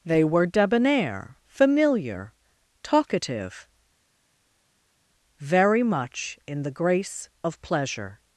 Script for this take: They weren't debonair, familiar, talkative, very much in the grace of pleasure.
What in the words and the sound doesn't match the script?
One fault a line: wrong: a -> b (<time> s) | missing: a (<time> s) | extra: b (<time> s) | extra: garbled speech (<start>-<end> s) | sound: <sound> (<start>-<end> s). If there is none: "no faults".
wrong: weren't -> were (0.2 s)